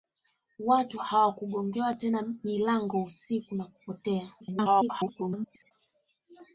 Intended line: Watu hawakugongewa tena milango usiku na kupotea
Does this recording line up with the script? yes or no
no